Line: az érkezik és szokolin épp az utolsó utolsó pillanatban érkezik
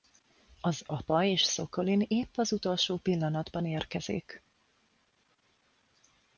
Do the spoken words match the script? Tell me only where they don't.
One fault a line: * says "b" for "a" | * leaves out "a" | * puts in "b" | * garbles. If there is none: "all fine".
* says "apa" for "érkezik"
* leaves out "utolsó"